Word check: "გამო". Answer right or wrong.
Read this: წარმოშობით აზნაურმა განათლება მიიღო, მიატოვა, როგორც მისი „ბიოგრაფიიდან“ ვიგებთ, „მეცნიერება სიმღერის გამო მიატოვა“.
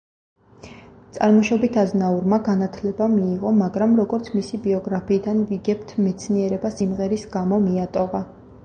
right